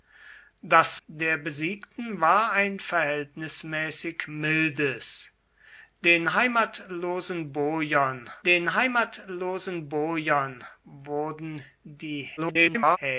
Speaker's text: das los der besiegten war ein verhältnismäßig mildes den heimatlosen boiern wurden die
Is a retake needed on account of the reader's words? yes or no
yes